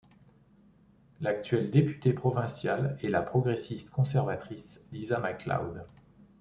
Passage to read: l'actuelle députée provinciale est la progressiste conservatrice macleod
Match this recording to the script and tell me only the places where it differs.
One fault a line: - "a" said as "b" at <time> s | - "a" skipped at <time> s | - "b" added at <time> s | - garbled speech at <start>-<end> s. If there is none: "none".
- "lisa" added at 4.9 s